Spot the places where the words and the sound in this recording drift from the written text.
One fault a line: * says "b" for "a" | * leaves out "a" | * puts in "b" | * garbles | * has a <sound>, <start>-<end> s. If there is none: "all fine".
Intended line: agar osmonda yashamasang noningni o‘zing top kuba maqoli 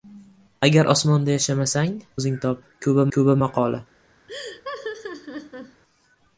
* leaves out "noningni"
* puts in "kuba"
* has a laugh, 4.3-5.8 s